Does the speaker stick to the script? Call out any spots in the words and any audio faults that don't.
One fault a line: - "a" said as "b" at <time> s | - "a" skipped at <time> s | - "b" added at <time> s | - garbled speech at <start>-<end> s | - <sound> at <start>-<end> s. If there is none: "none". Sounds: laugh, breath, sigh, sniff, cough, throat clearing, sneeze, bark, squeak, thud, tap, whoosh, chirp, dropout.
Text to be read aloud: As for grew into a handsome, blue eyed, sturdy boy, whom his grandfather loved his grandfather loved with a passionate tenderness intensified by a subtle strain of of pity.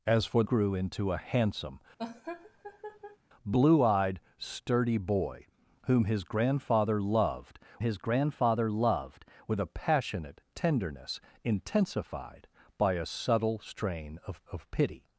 - laugh at 2.0-3.2 s